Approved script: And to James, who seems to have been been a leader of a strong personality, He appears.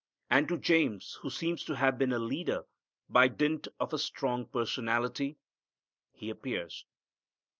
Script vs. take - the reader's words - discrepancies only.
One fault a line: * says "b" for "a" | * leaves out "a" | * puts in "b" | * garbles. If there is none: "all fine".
* leaves out "been"
* puts in "by dint"